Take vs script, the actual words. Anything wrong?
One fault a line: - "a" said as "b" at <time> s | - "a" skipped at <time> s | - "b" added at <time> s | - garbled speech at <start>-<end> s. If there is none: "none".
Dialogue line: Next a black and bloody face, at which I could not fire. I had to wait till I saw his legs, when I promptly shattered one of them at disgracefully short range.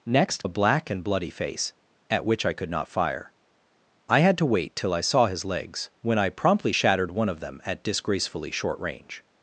none